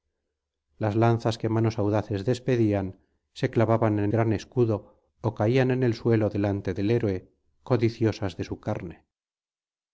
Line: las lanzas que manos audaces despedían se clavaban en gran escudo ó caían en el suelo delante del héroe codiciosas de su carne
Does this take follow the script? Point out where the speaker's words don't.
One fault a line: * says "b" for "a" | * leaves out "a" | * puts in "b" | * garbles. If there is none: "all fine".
all fine